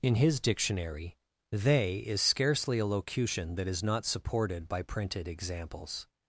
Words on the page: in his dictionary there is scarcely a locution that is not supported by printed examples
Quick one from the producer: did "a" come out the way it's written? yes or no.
yes